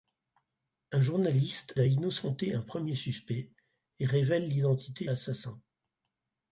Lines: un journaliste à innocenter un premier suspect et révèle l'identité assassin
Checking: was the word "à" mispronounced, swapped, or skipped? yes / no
no